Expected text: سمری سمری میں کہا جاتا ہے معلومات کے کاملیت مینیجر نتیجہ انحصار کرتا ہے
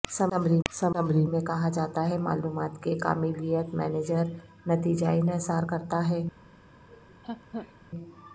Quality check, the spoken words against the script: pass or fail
pass